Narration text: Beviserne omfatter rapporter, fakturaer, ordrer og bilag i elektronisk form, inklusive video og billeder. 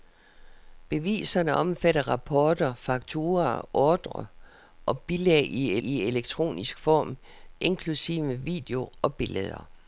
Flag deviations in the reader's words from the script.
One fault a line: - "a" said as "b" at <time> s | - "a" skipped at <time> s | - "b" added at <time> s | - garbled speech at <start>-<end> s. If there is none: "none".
- "i" added at 5.8 s